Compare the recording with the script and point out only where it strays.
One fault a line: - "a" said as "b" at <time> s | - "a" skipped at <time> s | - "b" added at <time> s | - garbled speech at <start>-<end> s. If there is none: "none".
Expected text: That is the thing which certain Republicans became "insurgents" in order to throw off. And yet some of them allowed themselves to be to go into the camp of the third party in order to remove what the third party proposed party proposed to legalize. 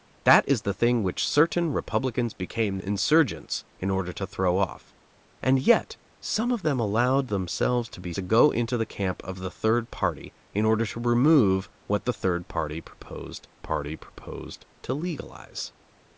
none